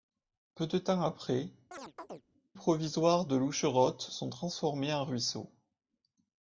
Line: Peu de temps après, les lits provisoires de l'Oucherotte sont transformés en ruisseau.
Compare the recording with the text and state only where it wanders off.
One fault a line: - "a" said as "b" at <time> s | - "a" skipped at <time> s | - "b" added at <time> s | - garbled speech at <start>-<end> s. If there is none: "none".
- "les lits" skipped at 1.5 s